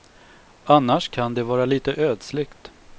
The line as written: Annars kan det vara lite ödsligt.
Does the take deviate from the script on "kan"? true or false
false